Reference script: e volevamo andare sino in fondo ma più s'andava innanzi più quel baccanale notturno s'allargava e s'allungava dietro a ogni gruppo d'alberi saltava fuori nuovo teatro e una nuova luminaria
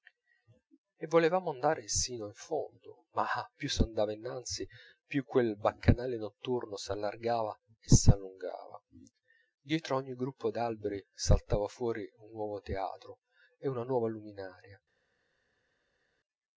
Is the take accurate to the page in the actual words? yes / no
no